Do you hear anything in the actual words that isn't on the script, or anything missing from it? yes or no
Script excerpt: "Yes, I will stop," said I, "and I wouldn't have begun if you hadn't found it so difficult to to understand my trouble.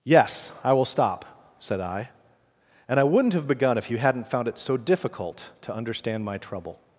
yes